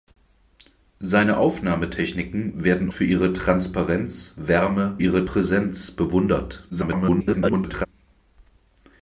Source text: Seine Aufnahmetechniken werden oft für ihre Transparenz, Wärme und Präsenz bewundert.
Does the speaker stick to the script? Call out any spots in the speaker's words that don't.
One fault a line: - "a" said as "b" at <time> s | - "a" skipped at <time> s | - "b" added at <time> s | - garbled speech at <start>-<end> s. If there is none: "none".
- "oft" skipped at 2.9 s
- "und" said as "ihre" at 5.0 s
- garbled speech at 6.7-7.9 s